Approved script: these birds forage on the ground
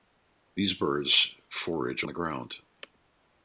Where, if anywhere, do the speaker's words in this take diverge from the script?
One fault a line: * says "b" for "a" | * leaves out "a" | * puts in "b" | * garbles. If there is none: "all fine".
* leaves out "on"